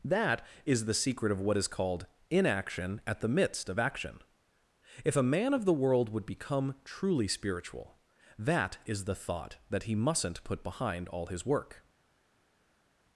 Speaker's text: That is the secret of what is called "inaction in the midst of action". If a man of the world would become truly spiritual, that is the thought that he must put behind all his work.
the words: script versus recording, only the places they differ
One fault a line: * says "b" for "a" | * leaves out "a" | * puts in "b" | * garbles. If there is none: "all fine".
* says "at" for "in"
* says "mustn't" for "must"